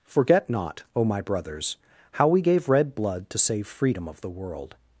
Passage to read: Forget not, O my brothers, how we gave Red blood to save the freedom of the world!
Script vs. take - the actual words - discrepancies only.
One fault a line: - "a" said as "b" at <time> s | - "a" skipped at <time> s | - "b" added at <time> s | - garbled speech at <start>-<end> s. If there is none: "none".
- "the" skipped at 3.7 s